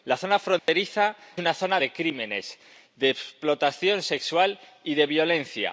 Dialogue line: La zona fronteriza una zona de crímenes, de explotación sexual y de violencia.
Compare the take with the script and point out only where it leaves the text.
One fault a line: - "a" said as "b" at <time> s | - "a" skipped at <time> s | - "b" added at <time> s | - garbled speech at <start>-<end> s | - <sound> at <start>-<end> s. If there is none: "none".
- dropout at 0.6-0.7 s